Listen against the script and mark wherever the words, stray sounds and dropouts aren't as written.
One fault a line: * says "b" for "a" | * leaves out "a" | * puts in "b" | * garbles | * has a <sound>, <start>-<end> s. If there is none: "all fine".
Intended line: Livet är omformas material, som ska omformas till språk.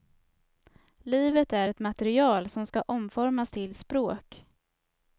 * says "ett" for "omformas"